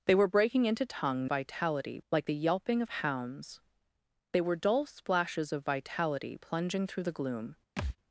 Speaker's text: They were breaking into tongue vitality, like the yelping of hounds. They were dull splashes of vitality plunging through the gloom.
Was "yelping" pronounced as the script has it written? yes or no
yes